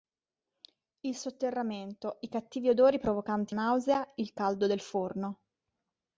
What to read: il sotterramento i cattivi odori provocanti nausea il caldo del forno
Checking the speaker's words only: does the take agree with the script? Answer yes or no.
yes